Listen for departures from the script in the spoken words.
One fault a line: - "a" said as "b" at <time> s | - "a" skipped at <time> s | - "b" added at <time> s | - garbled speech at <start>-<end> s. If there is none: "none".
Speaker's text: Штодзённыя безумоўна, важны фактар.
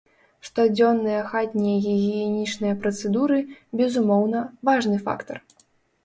- "хатнія гігіенічныя працэдуры" added at 1.3 s